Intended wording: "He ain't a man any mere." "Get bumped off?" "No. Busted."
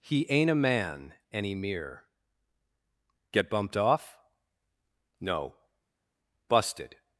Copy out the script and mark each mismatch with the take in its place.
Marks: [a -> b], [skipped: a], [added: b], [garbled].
"He ain't a man any mere." "Get bumped off?" "No. Busted."